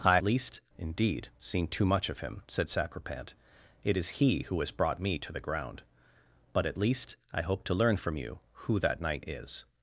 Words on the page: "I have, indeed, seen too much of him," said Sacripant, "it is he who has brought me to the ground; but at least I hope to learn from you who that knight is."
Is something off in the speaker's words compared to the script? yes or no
yes